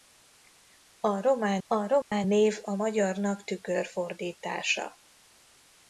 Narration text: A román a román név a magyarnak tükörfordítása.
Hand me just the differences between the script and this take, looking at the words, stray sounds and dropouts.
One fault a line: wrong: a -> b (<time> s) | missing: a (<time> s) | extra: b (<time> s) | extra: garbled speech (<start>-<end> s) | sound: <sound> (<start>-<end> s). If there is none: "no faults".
sound: dropout (2.0-2.1 s)